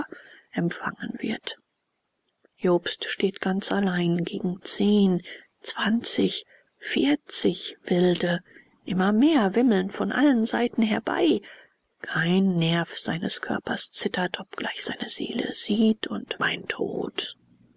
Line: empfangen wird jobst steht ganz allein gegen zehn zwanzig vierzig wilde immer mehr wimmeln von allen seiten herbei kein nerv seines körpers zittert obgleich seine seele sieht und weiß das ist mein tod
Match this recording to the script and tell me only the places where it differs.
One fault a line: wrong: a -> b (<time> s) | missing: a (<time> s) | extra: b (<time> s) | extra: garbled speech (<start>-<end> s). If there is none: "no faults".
missing: weiß das ist (16.4 s)